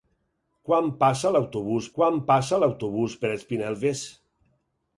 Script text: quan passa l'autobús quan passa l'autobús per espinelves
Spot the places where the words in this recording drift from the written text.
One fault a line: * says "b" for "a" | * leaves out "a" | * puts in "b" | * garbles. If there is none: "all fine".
all fine